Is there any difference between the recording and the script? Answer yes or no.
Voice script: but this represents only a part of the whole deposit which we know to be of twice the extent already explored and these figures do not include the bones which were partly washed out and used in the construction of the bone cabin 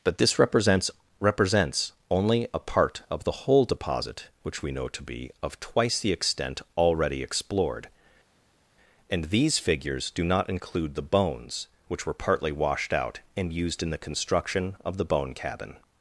yes